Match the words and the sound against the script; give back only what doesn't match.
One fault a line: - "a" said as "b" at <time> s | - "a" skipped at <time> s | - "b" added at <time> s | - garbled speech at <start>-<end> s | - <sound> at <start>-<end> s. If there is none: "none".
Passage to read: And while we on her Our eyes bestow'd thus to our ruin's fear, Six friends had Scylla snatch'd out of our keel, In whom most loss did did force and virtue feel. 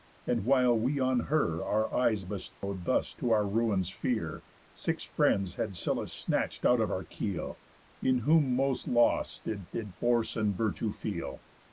- dropout at 2.5-2.6 s